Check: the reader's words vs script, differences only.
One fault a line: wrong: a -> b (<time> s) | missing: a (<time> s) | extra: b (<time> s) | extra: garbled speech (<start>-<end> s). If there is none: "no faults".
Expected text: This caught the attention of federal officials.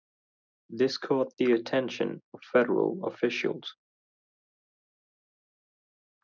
no faults